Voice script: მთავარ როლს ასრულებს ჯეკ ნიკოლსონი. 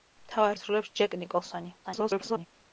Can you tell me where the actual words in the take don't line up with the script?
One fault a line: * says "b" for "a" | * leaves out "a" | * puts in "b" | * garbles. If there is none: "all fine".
* leaves out "როლს"
* garbles